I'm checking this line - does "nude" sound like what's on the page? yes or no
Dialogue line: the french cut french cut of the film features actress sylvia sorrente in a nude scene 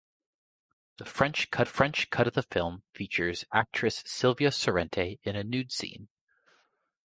yes